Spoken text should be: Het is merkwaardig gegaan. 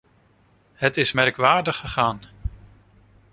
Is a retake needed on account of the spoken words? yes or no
no